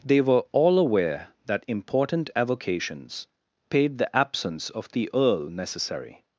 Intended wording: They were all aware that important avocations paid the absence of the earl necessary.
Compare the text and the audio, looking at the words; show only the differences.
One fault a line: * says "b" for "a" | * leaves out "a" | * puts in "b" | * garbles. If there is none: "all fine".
all fine